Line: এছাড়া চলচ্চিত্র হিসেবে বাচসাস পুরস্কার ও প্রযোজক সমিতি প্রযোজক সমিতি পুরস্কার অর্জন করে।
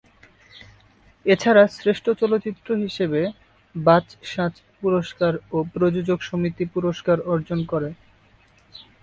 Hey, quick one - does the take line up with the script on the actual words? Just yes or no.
no